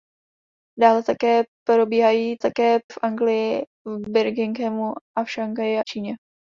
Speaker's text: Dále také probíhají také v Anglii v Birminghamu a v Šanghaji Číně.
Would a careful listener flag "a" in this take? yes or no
no